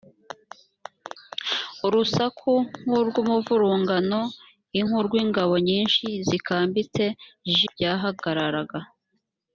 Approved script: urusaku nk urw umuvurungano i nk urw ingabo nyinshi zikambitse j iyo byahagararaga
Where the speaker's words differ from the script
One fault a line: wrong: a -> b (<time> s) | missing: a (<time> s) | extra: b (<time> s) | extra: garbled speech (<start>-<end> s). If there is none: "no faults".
missing: iyo (7.6 s)